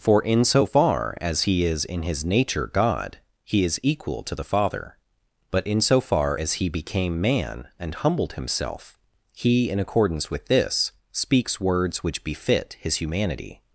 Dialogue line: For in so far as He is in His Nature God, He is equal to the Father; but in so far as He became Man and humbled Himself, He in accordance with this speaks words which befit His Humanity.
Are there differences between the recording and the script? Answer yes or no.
no